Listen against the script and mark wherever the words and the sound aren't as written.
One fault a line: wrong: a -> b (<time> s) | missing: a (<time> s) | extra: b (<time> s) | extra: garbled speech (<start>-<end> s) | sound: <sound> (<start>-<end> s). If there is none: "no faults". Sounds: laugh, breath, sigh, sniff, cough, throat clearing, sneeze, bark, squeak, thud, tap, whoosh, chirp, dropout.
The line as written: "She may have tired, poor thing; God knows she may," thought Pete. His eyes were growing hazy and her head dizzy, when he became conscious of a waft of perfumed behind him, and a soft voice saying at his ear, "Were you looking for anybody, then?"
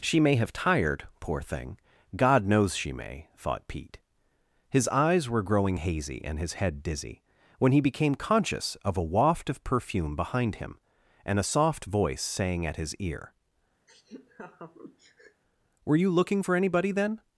wrong: her -> his (6.4 s)
wrong: perfumed -> perfume (9.6 s)
sound: laugh (13.9-15.4 s)